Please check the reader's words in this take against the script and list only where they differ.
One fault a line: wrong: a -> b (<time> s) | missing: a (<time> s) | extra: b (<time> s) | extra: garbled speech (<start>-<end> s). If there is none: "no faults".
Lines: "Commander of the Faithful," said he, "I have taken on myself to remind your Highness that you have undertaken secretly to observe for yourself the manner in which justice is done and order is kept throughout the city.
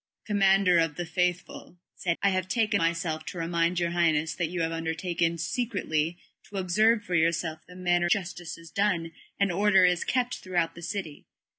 missing: he (2.2 s)
missing: on (2.8 s)
missing: in which (8.1 s)